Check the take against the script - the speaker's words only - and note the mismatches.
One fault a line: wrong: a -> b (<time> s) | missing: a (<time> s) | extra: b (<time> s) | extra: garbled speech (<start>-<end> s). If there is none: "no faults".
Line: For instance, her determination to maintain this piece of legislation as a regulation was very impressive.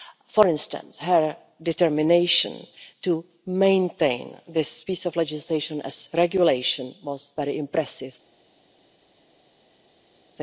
no faults